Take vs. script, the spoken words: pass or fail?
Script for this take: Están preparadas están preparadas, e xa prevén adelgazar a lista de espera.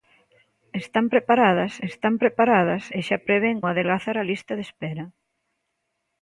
pass